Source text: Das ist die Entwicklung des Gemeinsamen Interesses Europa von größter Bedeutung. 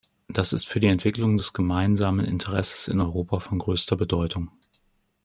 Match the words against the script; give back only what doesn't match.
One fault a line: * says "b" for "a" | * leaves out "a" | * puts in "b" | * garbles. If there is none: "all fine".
* puts in "für"
* puts in "in"